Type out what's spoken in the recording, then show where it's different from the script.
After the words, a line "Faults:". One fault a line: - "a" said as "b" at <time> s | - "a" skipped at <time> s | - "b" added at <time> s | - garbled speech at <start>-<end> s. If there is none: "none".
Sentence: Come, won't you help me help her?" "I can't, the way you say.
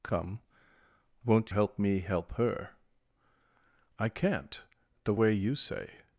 Come, won't help me help her?" "I can't, the way you say.
Faults:
- "you" skipped at 1.5 s